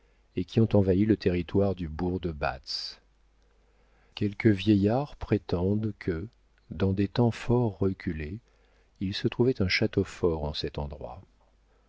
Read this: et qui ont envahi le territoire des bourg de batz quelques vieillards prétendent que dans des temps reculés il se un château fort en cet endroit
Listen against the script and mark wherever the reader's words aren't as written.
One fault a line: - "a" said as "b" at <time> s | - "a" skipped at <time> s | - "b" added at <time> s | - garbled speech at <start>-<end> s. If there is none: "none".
- "des" said as "du" at 1.8 s
- "fort" added at 7.3 s
- "trouvait" added at 9.3 s